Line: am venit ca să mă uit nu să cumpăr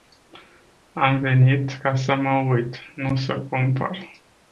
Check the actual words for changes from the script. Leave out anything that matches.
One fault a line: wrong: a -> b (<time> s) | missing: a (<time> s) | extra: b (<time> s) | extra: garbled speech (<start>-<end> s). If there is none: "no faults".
no faults